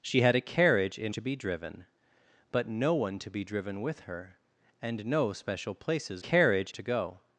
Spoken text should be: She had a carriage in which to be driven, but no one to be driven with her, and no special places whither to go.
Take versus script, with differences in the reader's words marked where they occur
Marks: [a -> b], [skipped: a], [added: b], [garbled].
She had a carriage in [skipped: which] to be driven, but no one to be driven with her, and no special places [whither -> carriage] to go.